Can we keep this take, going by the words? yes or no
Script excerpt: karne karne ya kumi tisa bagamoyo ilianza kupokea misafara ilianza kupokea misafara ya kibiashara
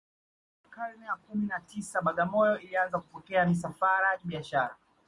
no